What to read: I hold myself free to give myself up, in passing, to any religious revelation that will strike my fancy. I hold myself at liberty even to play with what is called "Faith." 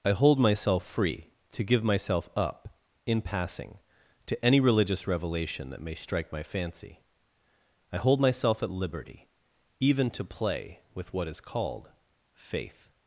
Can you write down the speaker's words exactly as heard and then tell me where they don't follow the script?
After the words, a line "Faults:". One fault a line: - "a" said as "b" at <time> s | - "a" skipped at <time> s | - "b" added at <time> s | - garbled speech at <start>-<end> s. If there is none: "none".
I hold myself free to give myself up, in passing, to any religious revelation that may strike my fancy. I hold myself at liberty even to play with what is called "Faith."
Faults:
- "will" said as "may" at 5.8 s